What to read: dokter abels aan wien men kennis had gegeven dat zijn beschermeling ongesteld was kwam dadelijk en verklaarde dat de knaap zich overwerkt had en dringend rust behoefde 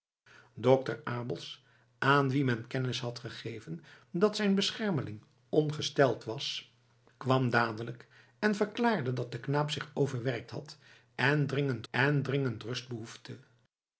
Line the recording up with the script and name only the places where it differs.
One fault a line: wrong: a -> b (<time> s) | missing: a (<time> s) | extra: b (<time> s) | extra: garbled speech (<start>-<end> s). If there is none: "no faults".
extra: en dringend (11.9 s)